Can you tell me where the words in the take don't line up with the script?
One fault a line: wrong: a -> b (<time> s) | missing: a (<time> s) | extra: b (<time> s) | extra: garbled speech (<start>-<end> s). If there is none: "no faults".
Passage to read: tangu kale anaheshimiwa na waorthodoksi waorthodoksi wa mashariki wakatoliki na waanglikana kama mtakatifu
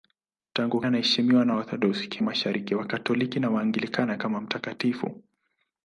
missing: kale (0.8 s)
missing: waorthodoksi wa (2.2 s)